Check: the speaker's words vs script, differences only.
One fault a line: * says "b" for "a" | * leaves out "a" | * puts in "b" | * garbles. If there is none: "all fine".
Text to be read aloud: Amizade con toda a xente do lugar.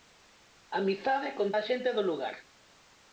* leaves out "toda"